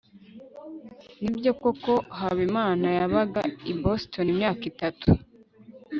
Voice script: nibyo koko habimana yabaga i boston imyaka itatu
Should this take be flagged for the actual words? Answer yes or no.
no